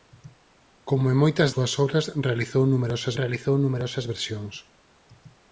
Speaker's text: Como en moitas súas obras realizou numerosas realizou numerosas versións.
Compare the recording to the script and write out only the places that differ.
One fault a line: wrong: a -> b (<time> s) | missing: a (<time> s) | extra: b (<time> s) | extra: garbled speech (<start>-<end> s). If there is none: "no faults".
no faults